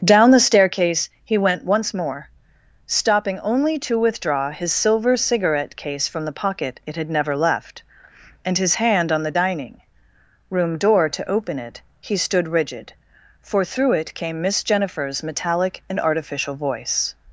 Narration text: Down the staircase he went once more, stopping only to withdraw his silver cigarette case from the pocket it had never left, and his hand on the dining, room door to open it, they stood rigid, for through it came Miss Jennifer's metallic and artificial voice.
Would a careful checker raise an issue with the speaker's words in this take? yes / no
yes